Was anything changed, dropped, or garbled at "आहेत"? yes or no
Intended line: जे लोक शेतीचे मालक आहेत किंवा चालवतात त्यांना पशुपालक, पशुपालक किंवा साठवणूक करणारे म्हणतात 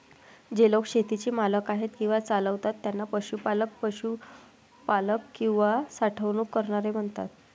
no